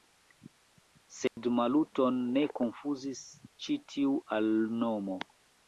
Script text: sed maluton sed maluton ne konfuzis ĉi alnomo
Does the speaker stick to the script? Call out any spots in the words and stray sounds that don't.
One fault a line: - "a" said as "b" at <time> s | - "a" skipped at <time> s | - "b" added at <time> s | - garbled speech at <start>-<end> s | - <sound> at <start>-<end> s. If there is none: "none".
- dropout at 1.3-1.4 s
- "sed maluton" skipped at 2.2 s
- "tiu" added at 4.0 s